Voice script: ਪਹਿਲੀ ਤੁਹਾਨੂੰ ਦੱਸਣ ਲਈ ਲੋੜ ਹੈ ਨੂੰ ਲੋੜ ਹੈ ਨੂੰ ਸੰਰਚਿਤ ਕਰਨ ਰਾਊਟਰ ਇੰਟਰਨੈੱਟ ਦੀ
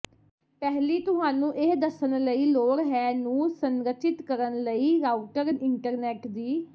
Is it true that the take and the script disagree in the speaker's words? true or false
true